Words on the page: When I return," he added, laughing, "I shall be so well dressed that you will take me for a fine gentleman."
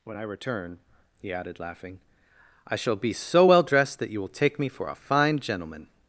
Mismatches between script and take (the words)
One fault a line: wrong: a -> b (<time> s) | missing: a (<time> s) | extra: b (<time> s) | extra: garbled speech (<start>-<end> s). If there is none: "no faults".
no faults